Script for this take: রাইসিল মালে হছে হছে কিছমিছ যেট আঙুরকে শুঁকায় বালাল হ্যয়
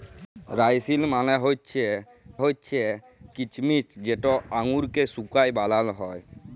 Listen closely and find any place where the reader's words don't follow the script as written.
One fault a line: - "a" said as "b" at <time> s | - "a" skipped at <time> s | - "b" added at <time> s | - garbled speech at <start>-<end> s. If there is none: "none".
none